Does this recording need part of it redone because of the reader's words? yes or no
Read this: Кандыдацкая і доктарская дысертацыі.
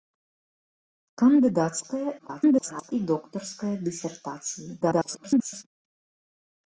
yes